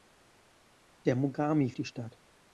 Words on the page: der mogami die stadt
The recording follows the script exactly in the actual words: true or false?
true